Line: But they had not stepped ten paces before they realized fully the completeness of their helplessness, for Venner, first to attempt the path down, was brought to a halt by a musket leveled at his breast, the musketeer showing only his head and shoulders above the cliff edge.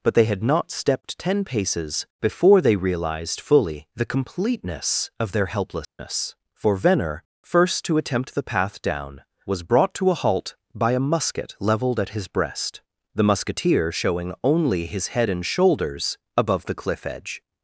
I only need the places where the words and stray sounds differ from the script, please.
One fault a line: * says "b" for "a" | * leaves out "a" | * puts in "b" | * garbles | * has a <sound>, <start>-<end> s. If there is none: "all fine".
* has a dropout, 5.8-6.0 s